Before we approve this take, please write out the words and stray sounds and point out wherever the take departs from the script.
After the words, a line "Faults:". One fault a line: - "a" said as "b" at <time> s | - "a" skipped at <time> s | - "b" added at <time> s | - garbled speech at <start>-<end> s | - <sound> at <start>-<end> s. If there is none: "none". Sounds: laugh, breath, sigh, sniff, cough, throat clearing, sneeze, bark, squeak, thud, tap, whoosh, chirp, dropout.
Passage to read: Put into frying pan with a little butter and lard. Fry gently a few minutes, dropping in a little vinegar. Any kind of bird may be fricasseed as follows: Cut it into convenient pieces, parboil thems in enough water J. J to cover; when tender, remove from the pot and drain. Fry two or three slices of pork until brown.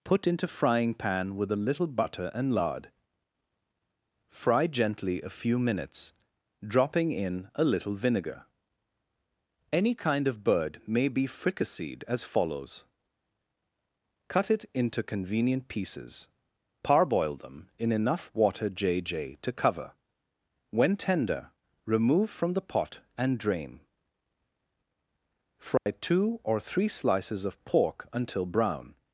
Put into frying pan with a little butter and lard. Fry gently a few minutes, dropping in a little vinegar. Any kind of bird may be fricasseed as follows: Cut it into convenient pieces, parboil them in enough water J. J to cover; when tender, remove from the pot and drain. Fry two or three slices of pork until brown.
Faults:
- "thems" said as "them" at 17.4 s
- dropout at 25.8-25.9 s